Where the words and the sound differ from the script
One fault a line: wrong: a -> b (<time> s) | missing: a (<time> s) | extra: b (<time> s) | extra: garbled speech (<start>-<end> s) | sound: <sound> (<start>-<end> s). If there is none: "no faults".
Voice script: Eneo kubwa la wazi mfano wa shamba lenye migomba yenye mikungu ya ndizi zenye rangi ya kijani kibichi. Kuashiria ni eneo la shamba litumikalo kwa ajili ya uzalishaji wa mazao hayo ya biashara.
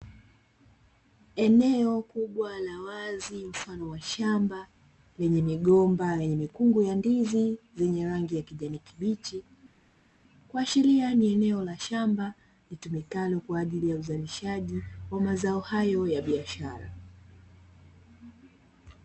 no faults